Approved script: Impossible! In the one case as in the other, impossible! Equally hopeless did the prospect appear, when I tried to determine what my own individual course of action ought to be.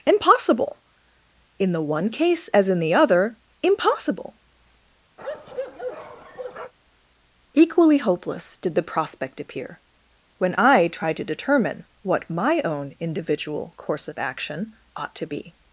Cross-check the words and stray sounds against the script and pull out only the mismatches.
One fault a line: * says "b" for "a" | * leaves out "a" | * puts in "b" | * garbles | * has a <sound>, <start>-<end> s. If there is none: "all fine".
* has a bark, 5.2-6.7 s